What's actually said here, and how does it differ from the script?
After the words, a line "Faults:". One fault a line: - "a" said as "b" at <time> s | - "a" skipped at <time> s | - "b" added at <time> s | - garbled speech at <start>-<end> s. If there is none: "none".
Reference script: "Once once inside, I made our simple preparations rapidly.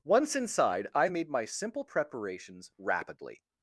"Once inside, I made my simple preparations rapidly.
Faults:
- "once" skipped at 0.3 s
- "our" said as "my" at 1.3 s